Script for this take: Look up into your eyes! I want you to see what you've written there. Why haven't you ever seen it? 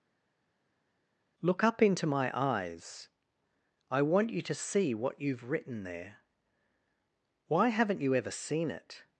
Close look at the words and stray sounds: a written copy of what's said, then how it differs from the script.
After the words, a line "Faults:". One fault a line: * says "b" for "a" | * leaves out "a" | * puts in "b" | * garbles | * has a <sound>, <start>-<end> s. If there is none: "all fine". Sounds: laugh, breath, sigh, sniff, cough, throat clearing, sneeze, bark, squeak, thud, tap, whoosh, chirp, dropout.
Look up into my eyes! I want you to see what you've written there. Why haven't you ever seen it?
Faults:
* says "my" for "your"